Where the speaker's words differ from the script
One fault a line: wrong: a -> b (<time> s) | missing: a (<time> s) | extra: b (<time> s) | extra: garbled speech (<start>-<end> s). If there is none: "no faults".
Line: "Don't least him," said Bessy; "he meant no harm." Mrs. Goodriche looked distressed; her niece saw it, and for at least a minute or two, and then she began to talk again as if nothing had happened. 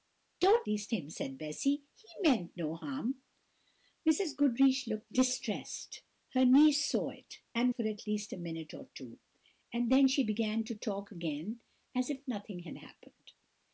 no faults